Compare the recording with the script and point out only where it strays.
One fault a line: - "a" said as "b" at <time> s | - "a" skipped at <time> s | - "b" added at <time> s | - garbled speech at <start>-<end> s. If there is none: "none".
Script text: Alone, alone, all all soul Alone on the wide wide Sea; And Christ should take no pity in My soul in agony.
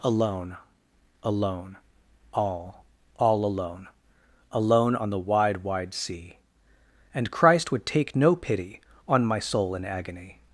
- "soul" said as "alone" at 3.5 s
- "should" said as "would" at 7.7 s
- "in" said as "on" at 9.1 s